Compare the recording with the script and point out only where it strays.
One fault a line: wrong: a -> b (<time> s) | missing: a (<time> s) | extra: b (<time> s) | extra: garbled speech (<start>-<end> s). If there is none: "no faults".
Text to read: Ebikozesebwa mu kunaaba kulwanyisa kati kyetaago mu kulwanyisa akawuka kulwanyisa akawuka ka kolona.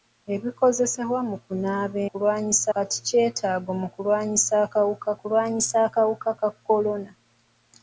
no faults